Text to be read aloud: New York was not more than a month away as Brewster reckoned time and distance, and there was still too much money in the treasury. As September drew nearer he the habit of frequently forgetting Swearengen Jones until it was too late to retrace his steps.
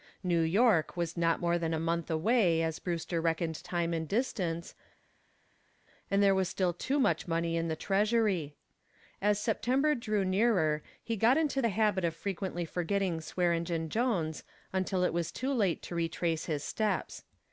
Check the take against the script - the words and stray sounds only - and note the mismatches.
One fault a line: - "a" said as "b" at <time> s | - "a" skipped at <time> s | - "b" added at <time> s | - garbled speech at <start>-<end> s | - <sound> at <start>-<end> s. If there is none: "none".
- "got into" added at 11.2 s